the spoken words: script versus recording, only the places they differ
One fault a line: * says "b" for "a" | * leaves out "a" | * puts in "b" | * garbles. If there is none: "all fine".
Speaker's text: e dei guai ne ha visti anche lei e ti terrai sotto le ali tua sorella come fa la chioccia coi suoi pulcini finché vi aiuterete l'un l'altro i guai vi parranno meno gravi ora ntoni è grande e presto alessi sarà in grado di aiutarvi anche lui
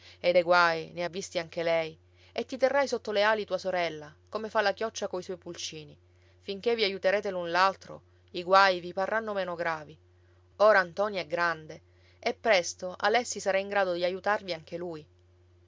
all fine